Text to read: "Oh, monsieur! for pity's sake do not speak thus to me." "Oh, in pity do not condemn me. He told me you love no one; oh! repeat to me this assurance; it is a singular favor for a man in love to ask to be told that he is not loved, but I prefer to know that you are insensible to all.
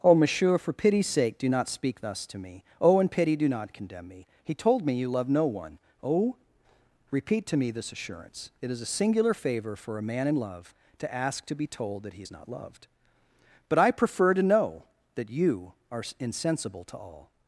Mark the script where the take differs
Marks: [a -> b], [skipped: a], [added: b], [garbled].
"Oh, monsieur! for pity's sake do not speak thus to me." "Oh, in pity do not condemn me. He told me you love no one; oh! repeat to me this assurance; it is a singular favor for a man in love to ask to be told that he is not loved, but I prefer to know that you are insensible to all.